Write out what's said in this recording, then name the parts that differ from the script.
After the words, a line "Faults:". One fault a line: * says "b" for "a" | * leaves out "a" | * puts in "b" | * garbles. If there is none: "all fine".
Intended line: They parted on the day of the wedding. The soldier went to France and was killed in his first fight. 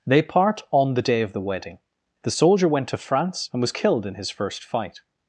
They part on the day of the wedding. The soldier went to France and was killed in his first fight.
Faults:
* says "part" for "parted"